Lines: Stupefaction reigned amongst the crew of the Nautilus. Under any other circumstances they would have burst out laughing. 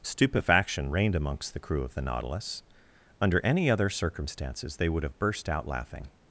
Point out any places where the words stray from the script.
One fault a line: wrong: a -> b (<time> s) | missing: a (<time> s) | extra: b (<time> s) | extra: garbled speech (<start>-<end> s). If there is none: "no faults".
no faults